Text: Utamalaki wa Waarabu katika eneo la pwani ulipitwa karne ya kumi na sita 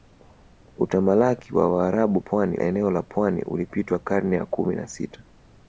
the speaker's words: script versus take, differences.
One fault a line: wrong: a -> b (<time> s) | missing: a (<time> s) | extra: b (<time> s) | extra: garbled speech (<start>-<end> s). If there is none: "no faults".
wrong: katika -> pwani (2.2 s)